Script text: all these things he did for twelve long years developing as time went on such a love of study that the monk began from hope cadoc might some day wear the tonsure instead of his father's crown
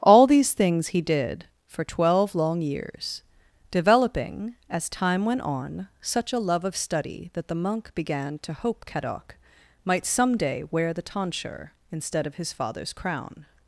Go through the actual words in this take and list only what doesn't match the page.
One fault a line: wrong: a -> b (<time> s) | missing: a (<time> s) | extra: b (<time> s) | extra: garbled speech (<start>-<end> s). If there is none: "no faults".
wrong: from -> to (8.4 s)